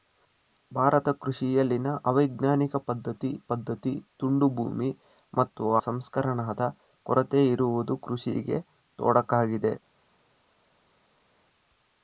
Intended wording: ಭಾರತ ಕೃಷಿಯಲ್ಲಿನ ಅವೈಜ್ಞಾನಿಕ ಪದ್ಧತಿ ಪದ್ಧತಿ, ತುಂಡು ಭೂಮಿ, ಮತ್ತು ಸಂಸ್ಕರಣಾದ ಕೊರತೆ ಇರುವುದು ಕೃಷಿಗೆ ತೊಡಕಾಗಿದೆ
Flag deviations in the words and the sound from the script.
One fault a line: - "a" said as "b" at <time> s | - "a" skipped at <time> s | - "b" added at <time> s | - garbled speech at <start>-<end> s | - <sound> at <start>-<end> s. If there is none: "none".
none